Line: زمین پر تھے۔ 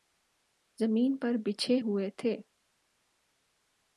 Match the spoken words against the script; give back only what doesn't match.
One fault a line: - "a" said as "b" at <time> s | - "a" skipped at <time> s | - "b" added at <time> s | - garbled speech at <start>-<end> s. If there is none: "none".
- "بچھے ہوئے" added at 1.4 s